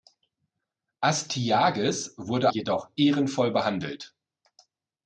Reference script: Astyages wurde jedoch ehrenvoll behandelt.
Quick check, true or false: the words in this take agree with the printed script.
true